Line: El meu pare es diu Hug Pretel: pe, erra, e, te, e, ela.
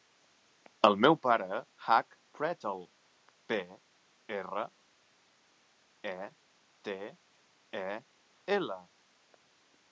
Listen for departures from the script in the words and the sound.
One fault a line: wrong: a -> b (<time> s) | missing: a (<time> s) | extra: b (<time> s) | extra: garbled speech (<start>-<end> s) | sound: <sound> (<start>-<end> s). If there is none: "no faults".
missing: es diu (1.6 s)